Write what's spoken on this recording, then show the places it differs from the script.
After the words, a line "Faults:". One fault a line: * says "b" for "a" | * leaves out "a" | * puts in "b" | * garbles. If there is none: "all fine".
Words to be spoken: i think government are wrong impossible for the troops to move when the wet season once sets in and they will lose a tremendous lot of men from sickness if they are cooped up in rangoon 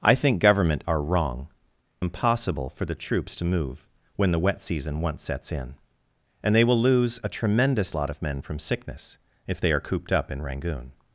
i think government are wrong impossible for the troops to move when the wet season once sets in and they will lose a tremendous lot of men from sickness if they are cooped up in rangoon
Faults:
all fine